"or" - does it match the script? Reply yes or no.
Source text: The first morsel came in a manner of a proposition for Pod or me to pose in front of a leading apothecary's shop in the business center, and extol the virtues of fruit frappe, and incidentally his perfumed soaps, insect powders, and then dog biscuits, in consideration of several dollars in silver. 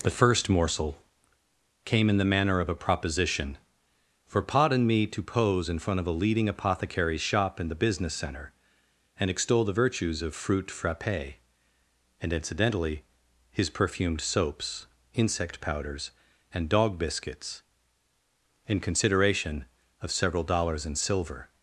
no